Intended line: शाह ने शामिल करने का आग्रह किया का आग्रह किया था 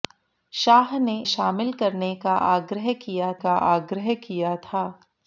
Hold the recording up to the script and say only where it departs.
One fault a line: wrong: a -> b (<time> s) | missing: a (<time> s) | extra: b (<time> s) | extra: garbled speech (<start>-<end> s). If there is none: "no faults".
no faults